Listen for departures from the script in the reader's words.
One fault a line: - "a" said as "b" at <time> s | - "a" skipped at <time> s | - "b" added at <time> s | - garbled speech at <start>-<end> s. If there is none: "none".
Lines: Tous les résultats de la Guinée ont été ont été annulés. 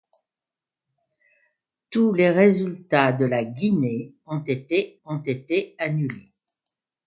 none